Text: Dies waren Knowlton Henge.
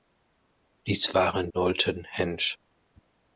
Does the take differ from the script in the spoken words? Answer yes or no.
no